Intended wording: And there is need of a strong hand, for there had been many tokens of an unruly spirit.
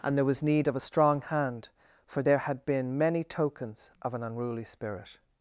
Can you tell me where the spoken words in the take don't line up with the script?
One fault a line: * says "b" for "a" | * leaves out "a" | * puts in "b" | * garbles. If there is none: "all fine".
* says "was" for "is"